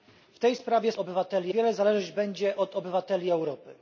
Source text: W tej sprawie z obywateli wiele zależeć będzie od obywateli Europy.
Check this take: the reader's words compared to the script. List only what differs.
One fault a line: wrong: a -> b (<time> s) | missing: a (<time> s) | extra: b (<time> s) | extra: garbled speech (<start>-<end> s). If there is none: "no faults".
no faults